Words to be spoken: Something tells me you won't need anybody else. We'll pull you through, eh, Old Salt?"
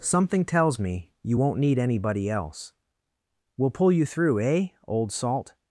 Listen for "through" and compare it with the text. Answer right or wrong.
right